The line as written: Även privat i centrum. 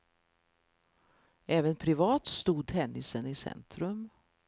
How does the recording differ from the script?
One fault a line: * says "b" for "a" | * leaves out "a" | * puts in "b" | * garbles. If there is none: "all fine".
* puts in "stod tennisen"